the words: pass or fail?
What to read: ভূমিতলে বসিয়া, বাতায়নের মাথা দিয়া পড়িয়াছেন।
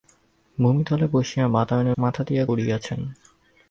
pass